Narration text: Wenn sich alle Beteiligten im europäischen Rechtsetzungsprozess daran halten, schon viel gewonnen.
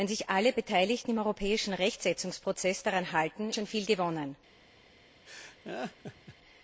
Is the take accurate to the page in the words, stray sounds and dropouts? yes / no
no